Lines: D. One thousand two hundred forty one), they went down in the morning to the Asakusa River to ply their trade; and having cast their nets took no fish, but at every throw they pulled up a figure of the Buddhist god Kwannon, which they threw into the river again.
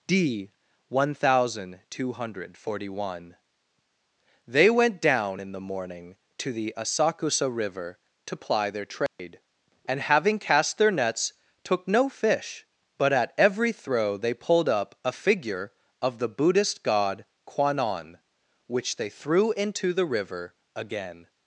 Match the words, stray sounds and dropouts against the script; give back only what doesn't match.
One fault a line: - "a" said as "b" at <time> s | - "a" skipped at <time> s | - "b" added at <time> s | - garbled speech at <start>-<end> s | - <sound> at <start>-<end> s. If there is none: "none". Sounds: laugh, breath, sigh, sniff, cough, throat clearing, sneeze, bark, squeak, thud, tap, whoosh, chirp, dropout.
- dropout at 9.1-9.2 s